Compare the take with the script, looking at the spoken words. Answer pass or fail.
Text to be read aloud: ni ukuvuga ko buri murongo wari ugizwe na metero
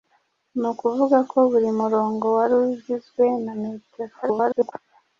fail